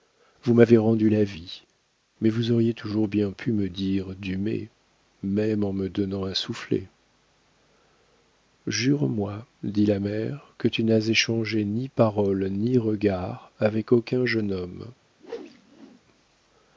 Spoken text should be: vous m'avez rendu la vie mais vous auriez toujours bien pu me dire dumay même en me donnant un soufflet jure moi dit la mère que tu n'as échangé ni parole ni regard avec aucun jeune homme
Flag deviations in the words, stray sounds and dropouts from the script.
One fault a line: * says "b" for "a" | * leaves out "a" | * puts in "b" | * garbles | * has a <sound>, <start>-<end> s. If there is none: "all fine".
* has a whoosh, 15.2-16.0 s